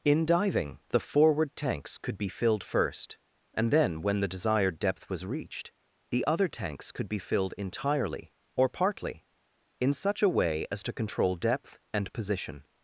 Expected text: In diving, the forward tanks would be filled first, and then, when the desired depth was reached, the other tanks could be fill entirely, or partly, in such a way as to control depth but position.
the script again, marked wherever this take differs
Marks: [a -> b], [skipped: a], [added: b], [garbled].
In diving, the forward tanks [would -> could] be filled first, and then, when the desired depth was reached, the other tanks could be [fill -> filled] entirely, or partly, in such a way as to control depth [but -> and] position.